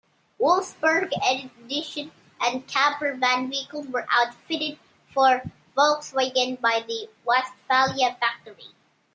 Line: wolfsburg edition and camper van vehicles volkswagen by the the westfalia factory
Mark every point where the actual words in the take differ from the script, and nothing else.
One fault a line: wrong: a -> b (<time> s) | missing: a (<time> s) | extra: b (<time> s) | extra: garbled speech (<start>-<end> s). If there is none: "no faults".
extra: were outfitted for (3.9 s)
missing: the (7.1 s)